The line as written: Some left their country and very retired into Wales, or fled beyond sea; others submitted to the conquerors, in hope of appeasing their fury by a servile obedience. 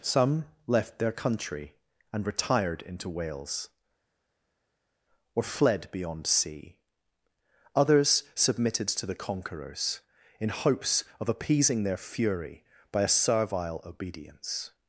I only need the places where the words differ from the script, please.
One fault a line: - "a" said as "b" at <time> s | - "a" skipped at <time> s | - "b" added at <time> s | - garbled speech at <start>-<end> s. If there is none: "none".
- "very" skipped at 2.2 s
- "hope" said as "hopes" at 10.5 s